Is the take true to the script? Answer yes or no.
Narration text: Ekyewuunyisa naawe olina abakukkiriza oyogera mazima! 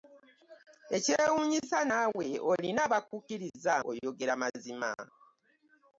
yes